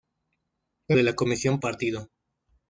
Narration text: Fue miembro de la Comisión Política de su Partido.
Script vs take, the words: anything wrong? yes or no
yes